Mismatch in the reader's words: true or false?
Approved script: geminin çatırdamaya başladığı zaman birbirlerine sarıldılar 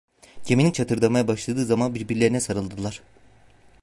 false